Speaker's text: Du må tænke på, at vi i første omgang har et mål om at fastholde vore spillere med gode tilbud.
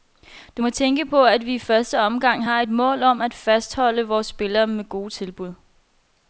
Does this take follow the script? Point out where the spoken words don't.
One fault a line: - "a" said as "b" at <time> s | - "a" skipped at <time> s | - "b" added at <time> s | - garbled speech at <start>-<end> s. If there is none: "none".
none